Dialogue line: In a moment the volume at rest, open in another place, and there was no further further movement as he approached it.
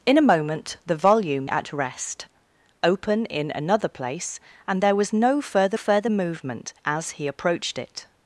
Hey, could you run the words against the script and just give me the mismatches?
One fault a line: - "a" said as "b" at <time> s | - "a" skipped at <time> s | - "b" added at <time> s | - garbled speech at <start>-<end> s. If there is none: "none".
none